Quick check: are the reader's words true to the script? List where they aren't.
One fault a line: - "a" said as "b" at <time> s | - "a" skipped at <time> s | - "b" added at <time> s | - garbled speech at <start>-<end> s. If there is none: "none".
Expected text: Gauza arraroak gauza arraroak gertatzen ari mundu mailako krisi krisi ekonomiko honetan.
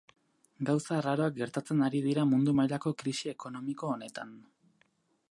- "gauza arraroak" skipped at 1.4 s
- "dira" added at 2.0 s
- "krisi" skipped at 3.3 s